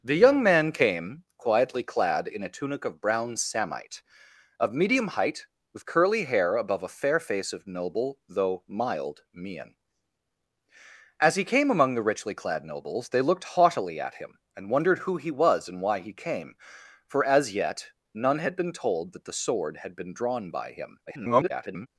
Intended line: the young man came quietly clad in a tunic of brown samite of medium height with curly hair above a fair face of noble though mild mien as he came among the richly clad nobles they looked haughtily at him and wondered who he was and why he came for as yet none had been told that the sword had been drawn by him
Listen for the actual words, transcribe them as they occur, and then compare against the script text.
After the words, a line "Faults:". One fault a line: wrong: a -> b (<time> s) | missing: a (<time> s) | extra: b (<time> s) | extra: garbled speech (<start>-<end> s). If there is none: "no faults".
the young man came quietly clad in a tunic of brown samite of medium height with curly hair above a fair face of noble though mild mien as he came among the richly clad nobles they looked haughtily at him and wondered who he was and why he came for as yet none had been told that the sword had been drawn by him [garbled]
Faults:
extra: garbled speech (21.1-21.9 s)